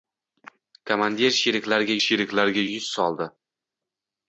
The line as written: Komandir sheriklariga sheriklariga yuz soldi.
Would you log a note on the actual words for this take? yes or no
no